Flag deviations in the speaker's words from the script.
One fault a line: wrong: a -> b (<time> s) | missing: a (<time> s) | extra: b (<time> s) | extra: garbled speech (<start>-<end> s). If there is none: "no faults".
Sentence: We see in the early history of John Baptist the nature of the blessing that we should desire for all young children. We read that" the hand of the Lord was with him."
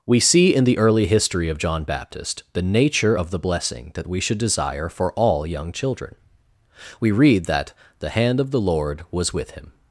no faults